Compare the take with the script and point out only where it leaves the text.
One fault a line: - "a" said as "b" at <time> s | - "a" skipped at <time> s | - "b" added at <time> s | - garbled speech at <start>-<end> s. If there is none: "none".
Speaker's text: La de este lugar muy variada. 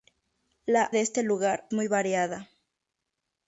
none